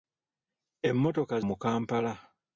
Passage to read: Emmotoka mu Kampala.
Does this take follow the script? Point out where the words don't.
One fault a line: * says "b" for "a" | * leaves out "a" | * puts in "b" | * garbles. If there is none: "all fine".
all fine